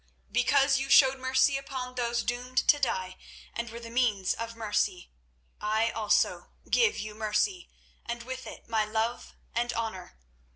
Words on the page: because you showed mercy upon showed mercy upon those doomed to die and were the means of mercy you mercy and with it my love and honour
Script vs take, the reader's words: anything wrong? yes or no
yes